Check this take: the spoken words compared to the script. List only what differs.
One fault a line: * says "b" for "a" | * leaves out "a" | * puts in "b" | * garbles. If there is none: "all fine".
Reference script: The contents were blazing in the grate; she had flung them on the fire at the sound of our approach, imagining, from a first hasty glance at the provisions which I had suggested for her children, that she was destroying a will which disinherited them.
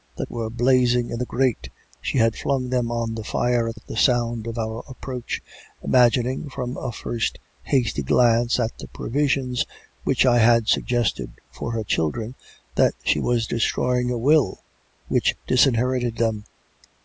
* leaves out "contents"
* puts in "at"